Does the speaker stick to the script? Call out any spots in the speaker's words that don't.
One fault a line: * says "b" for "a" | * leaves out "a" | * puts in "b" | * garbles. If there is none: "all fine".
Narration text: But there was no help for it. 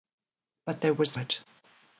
* leaves out "no help for"